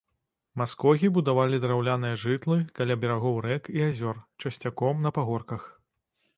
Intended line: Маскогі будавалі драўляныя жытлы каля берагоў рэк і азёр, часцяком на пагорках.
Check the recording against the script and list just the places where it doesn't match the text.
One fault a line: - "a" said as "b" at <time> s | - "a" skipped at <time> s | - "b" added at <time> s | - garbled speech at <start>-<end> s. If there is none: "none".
none